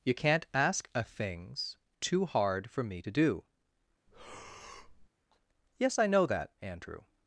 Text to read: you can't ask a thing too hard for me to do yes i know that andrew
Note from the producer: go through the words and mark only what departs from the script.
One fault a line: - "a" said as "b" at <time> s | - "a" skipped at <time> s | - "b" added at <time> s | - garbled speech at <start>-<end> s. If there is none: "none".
- "thing" said as "things" at 1.0 s